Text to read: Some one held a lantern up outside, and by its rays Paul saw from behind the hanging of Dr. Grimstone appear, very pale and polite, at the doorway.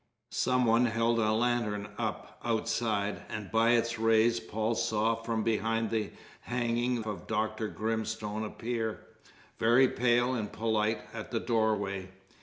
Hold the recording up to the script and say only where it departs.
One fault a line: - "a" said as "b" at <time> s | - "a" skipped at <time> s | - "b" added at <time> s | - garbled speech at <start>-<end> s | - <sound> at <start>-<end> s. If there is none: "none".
none